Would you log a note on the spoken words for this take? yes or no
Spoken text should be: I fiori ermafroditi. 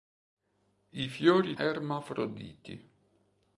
no